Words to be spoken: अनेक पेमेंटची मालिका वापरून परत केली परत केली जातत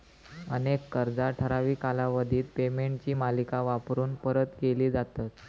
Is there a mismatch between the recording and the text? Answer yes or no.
yes